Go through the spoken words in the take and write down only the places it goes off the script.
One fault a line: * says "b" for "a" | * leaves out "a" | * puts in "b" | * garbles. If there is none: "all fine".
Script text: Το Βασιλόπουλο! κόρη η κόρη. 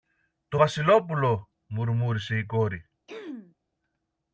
* says "μουρμούρισε" for "κόρη"